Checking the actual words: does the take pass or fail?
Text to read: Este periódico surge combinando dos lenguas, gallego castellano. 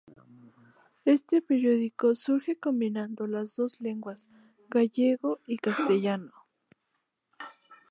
fail